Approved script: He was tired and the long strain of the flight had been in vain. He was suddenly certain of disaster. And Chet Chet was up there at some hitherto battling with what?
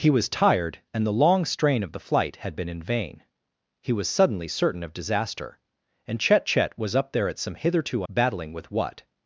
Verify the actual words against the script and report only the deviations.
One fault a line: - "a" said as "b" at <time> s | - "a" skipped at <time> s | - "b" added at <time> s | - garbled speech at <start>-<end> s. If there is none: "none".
none